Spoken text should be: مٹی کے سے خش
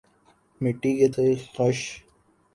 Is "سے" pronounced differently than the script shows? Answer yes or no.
no